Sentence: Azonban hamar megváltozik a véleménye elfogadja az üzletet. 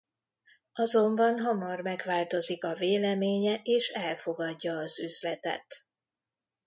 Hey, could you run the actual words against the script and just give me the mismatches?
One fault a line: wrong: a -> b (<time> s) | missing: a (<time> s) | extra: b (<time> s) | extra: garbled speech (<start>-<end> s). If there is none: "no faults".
extra: és (3.6 s)